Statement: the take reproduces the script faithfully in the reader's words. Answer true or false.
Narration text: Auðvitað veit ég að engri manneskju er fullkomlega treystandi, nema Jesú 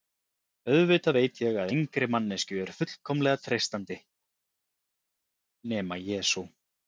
true